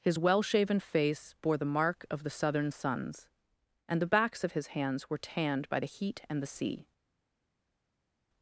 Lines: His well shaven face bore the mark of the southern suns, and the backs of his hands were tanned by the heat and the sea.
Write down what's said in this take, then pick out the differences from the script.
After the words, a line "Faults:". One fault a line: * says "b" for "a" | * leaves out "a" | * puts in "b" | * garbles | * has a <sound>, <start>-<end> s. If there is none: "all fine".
His well shaven face bore the mark of the southern suns, and the backs of his hands were tanned by the heat and the sea.
Faults:
all fine